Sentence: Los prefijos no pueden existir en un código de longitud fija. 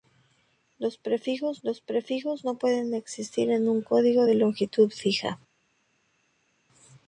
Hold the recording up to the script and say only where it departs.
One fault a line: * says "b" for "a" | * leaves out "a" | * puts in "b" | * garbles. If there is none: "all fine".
* puts in "los prefijos"